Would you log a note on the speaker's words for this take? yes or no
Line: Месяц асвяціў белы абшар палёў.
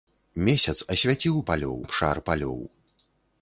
yes